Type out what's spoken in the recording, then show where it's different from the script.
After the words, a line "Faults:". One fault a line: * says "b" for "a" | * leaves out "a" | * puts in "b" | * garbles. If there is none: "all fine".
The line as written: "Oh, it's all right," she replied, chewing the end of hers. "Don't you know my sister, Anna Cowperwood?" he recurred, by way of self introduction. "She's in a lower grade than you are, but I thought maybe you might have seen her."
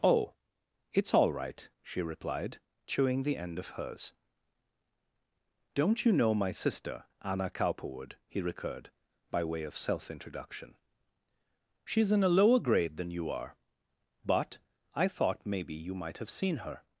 "Oh, it's all right," she replied, chewing the end of hers. "Don't you know my sister, Anna Cowperwood?" he recurred, by way of self introduction. "She's in a lower grade than you are, but I thought maybe you might have seen her."
Faults:
all fine